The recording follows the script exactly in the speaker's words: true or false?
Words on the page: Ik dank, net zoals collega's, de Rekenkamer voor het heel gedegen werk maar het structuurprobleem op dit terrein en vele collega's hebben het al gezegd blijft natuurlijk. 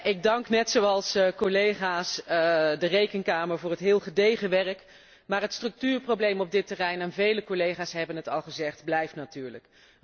true